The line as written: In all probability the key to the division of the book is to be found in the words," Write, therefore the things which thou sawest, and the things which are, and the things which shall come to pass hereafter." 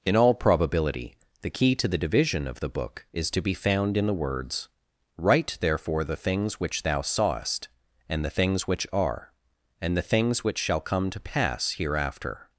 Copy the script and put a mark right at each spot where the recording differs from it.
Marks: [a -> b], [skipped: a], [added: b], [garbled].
In all probability the key to the division of the book is to be found in the words," Write, therefore the things which thou sawest, and the things which are, and the things which shall come to pass hereafter."